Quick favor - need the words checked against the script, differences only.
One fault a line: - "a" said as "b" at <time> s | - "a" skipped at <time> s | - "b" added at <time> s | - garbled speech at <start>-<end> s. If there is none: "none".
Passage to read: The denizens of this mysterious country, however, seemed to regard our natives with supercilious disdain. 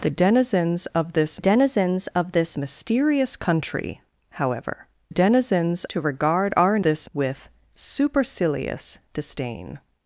- "denizens of this" added at 1.4 s
- "seemed" said as "denizens" at 5.1 s
- "natives" said as "this" at 6.8 s